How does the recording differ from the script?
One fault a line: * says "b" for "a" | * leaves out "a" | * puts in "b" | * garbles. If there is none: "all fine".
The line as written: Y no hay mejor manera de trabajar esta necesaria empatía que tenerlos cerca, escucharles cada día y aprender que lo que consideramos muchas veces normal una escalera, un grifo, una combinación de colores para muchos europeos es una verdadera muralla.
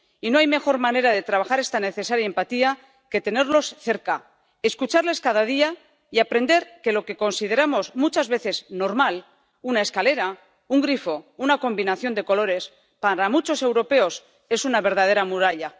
all fine